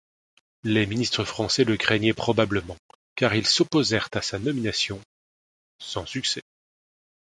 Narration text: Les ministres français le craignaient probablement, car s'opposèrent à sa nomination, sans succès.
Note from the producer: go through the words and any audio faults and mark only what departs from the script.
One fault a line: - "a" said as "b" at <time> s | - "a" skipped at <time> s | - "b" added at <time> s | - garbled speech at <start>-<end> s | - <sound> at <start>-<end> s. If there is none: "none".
- "ils" added at 3.3 s